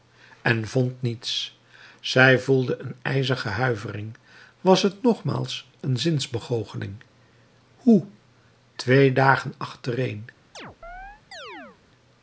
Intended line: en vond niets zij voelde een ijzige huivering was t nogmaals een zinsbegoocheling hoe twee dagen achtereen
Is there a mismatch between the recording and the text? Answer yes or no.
no